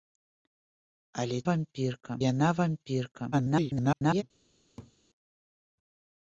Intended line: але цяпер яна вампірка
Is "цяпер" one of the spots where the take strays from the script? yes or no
yes